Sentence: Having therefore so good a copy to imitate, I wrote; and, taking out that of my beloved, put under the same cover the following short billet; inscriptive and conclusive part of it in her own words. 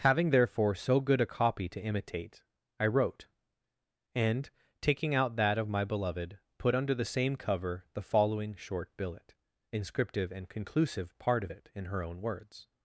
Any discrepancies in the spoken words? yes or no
no